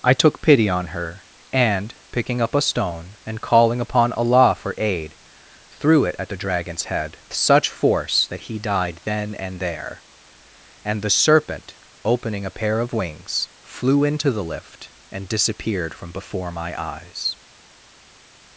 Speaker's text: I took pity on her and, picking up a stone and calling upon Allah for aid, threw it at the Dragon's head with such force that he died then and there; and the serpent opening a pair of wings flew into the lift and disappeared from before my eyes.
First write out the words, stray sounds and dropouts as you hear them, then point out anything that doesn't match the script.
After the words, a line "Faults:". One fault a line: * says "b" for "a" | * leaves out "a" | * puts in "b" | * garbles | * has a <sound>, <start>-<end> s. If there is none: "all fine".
I took pity on her and, picking up a stone and calling upon Allah for aid, threw it at the Dragon's head such force that he died then and there; and the serpent opening a pair of wings flew into the lift and disappeared from before my eyes.
Faults:
* leaves out "with"